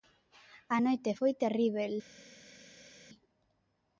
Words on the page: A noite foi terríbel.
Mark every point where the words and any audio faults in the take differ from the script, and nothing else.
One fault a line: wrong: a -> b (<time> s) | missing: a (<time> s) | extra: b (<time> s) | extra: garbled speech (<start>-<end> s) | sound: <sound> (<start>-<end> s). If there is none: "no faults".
no faults